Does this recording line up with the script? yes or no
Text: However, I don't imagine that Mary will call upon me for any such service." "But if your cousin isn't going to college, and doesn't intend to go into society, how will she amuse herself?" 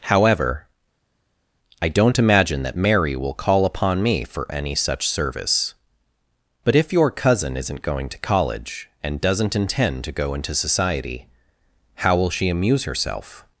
yes